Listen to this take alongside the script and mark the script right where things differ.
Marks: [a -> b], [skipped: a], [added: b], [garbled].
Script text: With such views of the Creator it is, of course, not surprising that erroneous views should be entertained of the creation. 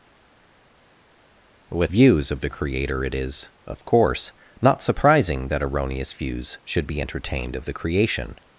With [skipped: such] views of the Creator it is, of course, not surprising that erroneous views should be entertained of the creation.